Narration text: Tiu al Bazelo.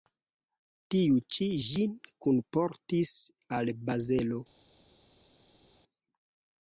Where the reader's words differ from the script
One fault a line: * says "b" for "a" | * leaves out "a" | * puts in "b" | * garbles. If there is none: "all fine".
* puts in "ĉi ĝin kunportis"